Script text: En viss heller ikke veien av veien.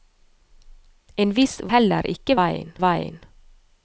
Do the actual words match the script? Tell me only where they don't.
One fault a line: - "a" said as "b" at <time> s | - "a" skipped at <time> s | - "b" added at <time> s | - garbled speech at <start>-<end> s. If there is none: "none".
none